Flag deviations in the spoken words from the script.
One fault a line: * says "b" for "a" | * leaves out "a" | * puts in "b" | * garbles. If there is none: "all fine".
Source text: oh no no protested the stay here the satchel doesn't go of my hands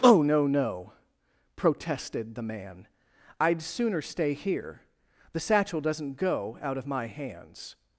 * puts in "man i'd sooner"
* puts in "out"